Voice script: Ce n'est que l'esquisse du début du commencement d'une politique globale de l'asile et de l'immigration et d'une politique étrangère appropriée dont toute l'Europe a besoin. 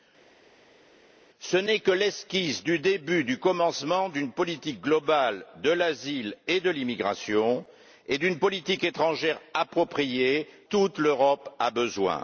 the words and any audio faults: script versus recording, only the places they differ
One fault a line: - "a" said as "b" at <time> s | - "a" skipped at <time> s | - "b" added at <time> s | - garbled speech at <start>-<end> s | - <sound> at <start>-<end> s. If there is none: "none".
- "dont" skipped at 10.5 s